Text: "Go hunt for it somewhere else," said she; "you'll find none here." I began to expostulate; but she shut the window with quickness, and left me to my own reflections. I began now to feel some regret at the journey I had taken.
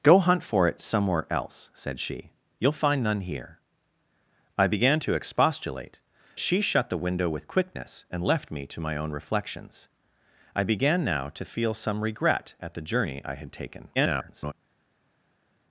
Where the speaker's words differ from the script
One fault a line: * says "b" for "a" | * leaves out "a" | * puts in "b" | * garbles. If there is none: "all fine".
* leaves out "but"
* garbles